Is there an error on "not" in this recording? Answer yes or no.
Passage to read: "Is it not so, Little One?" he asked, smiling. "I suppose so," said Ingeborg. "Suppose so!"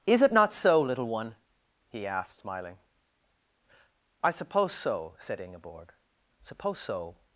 no